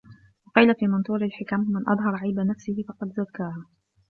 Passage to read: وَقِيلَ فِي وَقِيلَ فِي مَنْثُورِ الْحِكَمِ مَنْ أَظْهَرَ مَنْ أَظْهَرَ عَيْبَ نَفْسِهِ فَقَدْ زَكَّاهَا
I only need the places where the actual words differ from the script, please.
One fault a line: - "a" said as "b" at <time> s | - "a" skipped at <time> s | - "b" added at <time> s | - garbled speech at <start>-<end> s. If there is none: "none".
- "وَقِيلَ فِي" skipped at 0.9 s
- "مَنْ أَظْهَرَ" skipped at 2.1 s